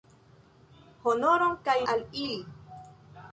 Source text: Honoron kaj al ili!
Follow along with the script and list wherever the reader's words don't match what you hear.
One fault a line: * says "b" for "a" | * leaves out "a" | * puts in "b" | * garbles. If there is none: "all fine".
all fine